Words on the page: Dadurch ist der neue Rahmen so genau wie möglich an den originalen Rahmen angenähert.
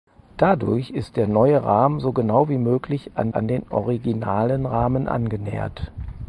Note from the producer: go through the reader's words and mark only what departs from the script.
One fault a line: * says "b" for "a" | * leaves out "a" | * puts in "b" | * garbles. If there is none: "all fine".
* puts in "an"